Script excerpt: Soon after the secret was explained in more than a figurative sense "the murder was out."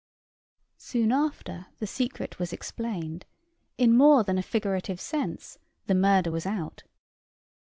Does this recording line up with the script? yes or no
yes